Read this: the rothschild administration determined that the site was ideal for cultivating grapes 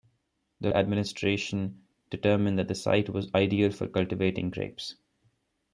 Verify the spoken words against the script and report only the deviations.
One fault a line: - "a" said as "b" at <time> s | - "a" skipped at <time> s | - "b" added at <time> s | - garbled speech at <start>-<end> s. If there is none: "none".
- "rothschild" skipped at 0.7 s